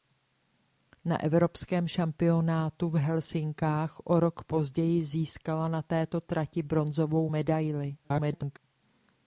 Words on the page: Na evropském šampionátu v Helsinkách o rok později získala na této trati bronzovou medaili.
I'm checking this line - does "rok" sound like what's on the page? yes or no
yes